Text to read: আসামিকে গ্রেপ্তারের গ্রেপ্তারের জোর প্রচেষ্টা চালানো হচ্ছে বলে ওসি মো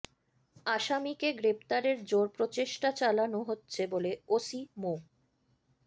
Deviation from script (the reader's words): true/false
true